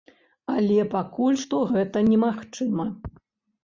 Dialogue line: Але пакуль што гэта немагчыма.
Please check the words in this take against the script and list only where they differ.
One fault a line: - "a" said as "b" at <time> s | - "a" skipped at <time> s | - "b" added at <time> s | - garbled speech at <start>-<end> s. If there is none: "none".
none